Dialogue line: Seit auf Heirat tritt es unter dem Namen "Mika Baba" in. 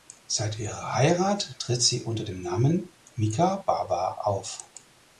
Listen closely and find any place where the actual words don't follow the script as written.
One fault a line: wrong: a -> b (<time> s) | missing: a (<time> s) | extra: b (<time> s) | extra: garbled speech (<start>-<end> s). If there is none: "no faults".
wrong: auf -> ihrer (0.6 s)
wrong: es -> sie (1.8 s)
wrong: in -> auf (4.2 s)